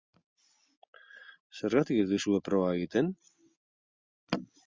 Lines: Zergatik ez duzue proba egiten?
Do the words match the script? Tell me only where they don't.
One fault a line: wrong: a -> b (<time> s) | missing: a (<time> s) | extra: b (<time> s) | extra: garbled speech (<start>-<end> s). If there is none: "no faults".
no faults